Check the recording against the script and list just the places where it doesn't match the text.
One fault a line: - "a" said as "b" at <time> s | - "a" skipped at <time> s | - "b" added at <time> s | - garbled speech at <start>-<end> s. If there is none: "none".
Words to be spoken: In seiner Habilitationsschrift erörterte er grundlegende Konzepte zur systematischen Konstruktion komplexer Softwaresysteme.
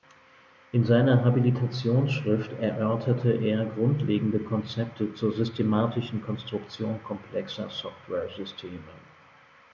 none